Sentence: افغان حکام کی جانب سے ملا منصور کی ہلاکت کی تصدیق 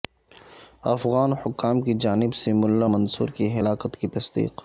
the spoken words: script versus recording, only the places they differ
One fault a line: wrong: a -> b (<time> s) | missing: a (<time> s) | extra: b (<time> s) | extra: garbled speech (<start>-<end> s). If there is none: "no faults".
no faults